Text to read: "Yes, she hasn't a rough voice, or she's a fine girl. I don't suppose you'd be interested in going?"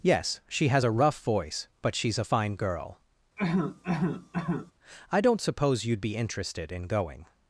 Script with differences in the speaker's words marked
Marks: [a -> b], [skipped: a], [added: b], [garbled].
"Yes, she [hasn't -> has] a rough voice, [or -> but] she's a fine girl. I don't suppose you'd be interested in going?"